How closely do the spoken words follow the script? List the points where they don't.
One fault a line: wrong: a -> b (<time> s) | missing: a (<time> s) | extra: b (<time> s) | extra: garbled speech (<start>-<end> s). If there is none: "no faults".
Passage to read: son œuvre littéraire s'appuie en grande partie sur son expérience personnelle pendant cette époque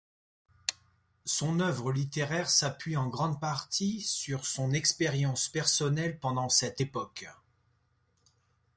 no faults